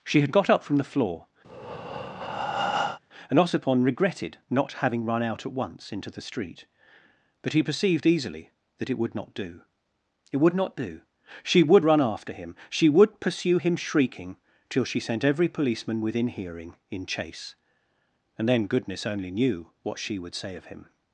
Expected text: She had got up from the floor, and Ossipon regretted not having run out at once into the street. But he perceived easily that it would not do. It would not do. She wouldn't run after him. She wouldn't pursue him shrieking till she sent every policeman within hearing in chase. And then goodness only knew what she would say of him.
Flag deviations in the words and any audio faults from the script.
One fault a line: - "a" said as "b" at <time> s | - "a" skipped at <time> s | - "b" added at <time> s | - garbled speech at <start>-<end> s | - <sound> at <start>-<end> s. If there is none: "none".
- breath at 1.4-3.0 s
- "wouldn't" said as "would" at 11.6 s
- "wouldn't" said as "would" at 12.9 s